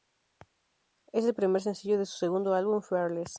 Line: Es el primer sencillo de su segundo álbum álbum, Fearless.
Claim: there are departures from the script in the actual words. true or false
true